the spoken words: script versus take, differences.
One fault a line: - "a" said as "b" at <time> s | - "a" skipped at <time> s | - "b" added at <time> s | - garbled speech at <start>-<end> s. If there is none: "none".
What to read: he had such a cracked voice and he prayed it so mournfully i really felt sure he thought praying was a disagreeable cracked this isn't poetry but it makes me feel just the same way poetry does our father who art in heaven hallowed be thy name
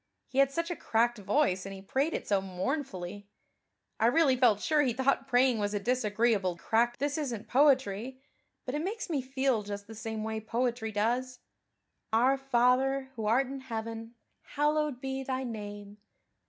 none